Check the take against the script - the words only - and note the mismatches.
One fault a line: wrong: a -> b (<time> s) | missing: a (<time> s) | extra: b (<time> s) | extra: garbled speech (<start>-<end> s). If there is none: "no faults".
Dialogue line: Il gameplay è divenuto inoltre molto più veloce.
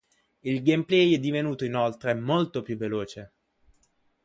no faults